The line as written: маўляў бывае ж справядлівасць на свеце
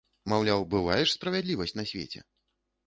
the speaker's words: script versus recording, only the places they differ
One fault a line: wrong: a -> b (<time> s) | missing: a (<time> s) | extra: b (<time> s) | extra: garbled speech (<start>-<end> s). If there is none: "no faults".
no faults